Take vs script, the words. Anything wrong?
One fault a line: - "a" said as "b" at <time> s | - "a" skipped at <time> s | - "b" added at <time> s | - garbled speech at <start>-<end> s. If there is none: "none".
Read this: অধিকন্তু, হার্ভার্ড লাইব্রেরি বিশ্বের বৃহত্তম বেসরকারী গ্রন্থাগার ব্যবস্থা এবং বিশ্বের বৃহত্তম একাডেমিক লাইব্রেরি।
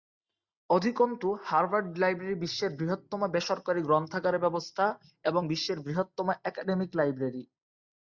none